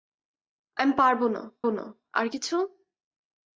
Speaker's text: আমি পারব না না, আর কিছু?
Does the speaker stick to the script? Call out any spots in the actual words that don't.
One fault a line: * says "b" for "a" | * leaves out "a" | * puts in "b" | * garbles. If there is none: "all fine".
all fine